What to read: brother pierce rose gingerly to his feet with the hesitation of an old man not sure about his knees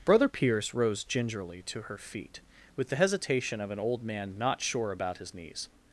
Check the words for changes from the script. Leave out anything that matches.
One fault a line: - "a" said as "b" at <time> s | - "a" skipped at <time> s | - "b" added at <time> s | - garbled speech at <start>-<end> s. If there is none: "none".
- "his" said as "her" at 1.8 s